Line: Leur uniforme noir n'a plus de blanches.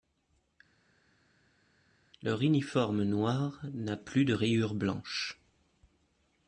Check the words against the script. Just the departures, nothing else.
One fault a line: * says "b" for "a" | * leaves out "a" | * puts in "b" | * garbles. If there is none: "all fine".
* puts in "rayures"